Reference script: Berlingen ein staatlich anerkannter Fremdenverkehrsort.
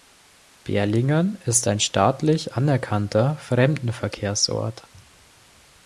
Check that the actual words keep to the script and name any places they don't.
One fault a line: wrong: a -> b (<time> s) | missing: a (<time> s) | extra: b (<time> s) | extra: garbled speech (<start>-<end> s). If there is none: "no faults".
extra: ist (1.4 s)